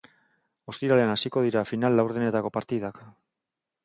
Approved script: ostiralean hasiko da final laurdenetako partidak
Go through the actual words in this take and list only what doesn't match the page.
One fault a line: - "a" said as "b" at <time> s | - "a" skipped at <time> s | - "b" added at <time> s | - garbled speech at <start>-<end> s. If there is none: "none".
- "da" said as "dira" at 1.5 s